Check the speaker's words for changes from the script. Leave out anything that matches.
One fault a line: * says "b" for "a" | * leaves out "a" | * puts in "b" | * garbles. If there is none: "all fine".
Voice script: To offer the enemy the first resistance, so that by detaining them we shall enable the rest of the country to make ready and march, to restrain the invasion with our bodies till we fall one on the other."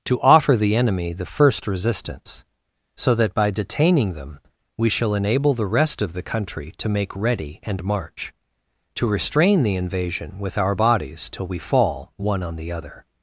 all fine